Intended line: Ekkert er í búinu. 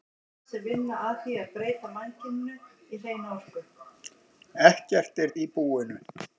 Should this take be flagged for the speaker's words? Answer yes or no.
no